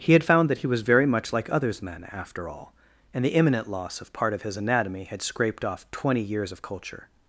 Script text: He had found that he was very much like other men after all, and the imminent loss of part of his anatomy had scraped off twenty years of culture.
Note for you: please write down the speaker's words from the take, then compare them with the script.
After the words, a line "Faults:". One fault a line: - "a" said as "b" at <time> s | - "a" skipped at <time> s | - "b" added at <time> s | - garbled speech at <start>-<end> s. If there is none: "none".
He had found that he was very much like others men after all, and the imminent loss of part of his anatomy had scraped off twenty years of culture.
Faults:
- "other" said as "others" at 1.5 s